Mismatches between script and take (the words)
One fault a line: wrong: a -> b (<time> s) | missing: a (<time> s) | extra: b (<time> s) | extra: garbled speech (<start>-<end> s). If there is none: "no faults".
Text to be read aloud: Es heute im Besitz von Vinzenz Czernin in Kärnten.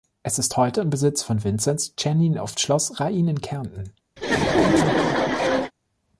extra: ist (0.4 s)
extra: auf Schloss Rain (2.4 s)